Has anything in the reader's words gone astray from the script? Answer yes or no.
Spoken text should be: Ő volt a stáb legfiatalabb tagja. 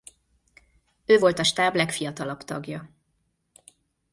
no